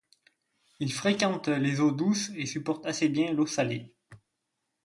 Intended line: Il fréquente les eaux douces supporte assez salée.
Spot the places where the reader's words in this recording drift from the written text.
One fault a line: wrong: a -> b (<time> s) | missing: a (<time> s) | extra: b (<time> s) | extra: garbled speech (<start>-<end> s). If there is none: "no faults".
extra: et (2.4 s)
extra: bien l'eau (3.1 s)